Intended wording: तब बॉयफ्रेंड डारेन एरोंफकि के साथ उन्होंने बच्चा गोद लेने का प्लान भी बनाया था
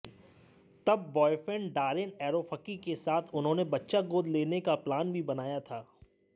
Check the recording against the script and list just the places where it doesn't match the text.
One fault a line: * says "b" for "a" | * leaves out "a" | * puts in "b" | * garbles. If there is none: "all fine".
all fine